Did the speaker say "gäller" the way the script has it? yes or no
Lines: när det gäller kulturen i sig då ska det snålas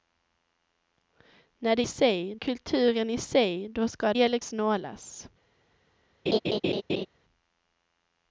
no